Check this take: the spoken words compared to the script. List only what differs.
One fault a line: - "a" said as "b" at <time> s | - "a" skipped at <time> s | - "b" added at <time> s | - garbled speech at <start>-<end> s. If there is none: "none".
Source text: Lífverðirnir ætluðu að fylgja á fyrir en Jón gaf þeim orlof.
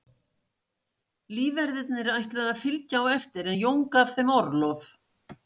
- "fyrir" said as "eftir" at 3.2 s